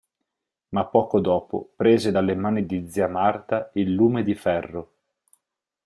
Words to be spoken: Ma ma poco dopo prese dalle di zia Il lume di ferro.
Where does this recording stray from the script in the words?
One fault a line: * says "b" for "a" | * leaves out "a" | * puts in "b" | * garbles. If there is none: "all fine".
* leaves out "ma"
* puts in "mani"
* puts in "Marta"